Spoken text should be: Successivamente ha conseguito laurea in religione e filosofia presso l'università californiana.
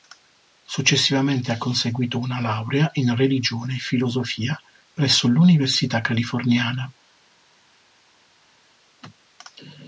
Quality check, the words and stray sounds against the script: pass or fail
fail